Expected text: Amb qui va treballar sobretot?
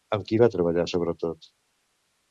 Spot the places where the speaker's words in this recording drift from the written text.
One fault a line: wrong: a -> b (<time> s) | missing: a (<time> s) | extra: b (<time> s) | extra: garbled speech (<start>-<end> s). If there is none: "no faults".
no faults